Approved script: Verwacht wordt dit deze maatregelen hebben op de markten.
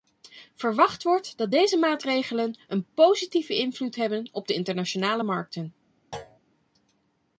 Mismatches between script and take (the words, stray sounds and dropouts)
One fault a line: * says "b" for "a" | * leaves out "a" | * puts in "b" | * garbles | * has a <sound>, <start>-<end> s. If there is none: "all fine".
* says "dat" for "dit"
* puts in "een positieve invloed"
* puts in "internationale"
* has a thud, 6.1-6.4 s